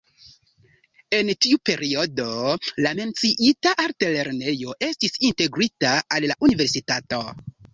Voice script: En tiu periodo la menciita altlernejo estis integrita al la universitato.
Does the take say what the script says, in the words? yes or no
yes